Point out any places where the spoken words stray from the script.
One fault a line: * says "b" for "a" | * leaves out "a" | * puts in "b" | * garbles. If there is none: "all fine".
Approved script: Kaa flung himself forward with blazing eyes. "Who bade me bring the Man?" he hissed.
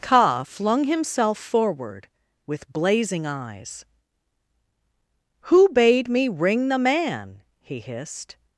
* says "ring" for "bring"